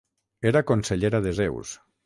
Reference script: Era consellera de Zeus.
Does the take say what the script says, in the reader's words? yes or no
yes